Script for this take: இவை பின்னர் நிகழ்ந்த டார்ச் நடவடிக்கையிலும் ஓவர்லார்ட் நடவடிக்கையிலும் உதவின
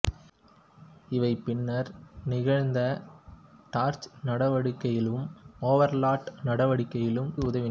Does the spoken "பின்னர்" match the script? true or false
true